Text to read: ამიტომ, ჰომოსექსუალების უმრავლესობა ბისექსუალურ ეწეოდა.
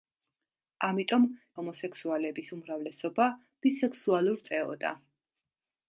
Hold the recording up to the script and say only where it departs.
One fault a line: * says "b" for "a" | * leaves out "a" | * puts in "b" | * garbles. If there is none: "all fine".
all fine